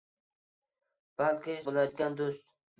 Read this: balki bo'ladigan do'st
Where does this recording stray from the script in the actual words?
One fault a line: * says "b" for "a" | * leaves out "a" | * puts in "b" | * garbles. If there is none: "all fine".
all fine